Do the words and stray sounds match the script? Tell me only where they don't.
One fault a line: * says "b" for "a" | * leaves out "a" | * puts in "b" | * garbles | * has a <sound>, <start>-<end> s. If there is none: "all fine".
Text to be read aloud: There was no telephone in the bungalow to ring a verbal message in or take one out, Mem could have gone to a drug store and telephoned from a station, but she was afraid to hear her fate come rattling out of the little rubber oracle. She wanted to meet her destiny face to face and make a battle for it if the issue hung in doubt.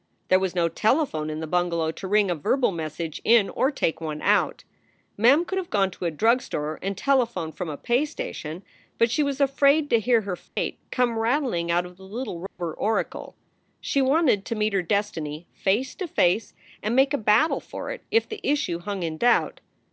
* puts in "pay"
* has a dropout, 10.5-10.6 s
* has a dropout, 12.5-12.6 s